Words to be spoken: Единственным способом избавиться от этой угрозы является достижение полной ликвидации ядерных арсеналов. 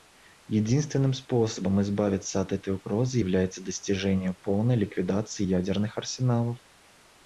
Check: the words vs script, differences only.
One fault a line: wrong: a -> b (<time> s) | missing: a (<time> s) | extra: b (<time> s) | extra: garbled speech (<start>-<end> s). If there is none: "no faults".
no faults